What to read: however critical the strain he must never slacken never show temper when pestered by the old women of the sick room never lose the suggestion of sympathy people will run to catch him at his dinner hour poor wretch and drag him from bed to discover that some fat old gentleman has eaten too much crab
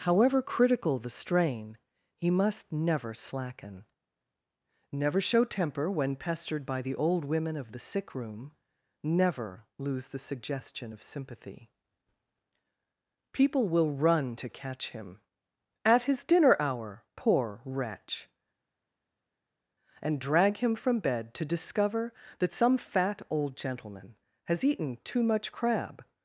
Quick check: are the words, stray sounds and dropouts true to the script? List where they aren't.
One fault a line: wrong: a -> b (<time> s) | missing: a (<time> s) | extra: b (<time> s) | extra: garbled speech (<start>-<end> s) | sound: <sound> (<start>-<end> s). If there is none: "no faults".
no faults